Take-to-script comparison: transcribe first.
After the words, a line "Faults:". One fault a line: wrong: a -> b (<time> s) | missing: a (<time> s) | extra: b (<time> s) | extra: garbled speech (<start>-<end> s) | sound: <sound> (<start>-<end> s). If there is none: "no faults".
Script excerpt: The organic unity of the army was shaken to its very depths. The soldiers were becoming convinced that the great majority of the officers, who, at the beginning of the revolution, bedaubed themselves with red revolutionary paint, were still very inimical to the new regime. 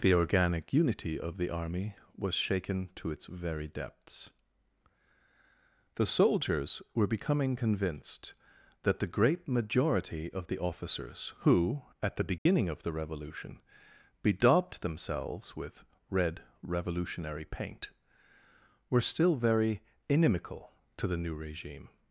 The organic unity of the army was shaken to its very depths. The soldiers were becoming convinced that the great majority of the officers, who, at the beginning of the revolution, bedaubed themselves with red revolutionary paint, were still very inimical to the new regime.
Faults:
sound: dropout (12.4-12.5 s)